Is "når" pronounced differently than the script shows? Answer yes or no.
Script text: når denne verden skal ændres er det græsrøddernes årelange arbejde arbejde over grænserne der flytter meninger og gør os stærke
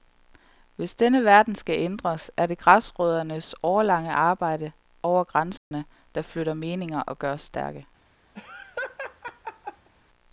yes